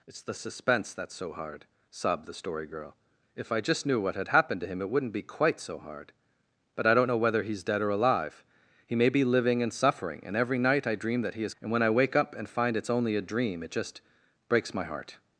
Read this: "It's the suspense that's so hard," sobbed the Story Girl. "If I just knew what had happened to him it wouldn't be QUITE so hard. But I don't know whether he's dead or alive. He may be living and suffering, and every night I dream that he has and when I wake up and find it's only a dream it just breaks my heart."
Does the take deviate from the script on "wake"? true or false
false